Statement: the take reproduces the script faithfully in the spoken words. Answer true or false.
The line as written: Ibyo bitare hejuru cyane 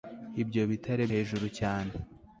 true